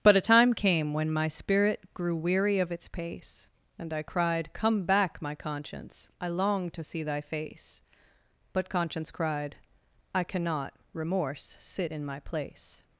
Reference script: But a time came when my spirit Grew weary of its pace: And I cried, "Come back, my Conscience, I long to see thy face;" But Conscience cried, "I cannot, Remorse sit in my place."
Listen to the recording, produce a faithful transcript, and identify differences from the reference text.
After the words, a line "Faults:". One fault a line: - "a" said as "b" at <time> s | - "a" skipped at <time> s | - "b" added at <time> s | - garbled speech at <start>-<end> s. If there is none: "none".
But a time came when my spirit Grew weary of its pace: And I cried, "Come back, my Conscience, I long to see thy face;" But Conscience cried, "I cannot, Remorse sit in my place."
Faults:
none